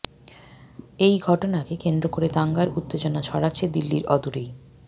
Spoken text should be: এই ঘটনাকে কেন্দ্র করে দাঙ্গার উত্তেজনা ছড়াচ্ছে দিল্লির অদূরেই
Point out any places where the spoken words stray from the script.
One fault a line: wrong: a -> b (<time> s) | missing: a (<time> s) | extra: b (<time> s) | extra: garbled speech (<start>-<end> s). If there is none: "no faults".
no faults